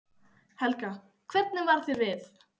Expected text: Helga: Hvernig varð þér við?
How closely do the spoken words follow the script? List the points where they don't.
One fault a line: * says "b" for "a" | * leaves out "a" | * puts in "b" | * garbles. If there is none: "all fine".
all fine